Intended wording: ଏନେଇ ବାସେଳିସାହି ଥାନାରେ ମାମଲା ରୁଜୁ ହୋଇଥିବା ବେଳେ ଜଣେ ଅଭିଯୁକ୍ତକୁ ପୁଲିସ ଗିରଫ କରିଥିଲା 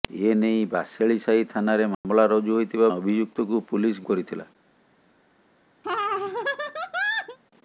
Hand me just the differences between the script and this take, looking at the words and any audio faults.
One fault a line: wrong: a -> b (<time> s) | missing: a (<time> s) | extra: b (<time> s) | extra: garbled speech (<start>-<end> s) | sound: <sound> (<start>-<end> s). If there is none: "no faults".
sound: dropout (1.9-2.0 s)
missing: ବେଳେ ଜଣେ (2.9 s)
missing: ଗିରଫ (4.1 s)
sound: laugh (5.8-7.4 s)